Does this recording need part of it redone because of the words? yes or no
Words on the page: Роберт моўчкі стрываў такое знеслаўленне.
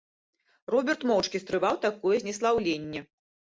no